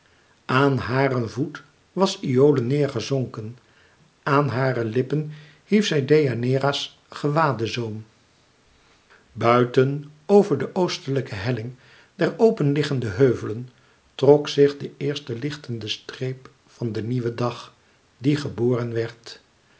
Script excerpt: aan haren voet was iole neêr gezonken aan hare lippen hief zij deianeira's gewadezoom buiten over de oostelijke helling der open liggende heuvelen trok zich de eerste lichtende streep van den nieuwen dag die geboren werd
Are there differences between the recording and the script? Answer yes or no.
no